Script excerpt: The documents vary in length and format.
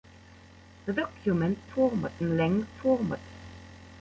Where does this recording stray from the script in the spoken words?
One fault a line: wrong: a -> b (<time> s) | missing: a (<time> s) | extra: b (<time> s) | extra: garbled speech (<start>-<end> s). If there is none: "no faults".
wrong: vary -> format (1.7 s)
missing: and (2.7 s)